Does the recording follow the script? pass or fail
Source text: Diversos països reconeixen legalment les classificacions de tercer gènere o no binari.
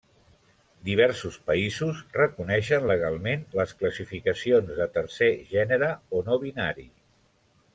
pass